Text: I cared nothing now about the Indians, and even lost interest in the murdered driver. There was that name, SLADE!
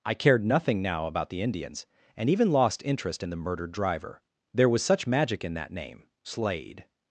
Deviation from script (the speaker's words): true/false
true